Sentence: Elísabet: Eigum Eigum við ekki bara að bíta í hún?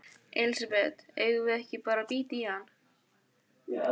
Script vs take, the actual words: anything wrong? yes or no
yes